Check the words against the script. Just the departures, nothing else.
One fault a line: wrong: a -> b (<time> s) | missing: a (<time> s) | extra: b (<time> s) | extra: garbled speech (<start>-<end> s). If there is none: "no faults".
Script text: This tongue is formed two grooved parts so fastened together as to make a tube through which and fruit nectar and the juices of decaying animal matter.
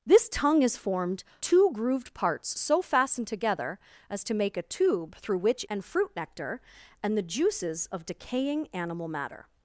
no faults